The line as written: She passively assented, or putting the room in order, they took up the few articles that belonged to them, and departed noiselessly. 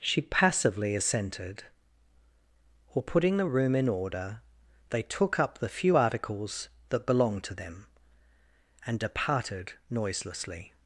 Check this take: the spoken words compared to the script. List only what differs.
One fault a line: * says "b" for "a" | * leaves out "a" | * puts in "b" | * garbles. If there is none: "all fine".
all fine